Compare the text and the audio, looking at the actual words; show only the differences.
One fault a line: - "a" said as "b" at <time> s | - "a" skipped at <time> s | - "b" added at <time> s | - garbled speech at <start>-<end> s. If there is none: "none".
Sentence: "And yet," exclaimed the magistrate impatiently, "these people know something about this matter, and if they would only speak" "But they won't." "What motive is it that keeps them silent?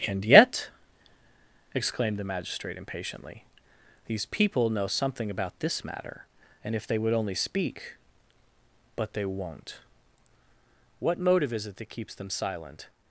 none